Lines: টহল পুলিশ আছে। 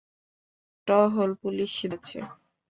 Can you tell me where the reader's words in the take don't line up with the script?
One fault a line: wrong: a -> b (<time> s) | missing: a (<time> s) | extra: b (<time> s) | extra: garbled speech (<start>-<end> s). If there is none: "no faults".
no faults